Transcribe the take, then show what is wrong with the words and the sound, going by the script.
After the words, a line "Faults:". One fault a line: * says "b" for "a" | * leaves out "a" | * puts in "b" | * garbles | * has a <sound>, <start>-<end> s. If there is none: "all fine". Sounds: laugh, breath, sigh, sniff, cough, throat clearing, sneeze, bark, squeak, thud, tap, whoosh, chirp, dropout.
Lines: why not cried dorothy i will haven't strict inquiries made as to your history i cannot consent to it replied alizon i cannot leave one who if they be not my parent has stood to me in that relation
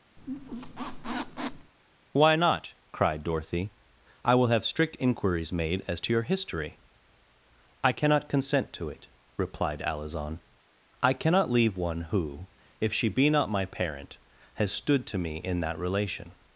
why not cried dorothy i will have strict inquiries made as to your history i cannot consent to it replied alizon i cannot leave one who if she be not my parent has stood to me in that relation
Faults:
* has a squeak, 0.2-1.7 s
* says "have" for "haven't"
* says "she" for "they"